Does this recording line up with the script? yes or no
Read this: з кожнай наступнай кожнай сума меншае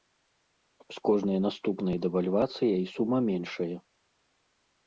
no